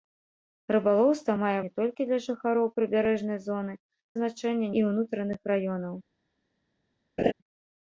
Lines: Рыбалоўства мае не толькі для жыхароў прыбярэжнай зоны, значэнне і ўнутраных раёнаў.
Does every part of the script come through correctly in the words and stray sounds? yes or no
no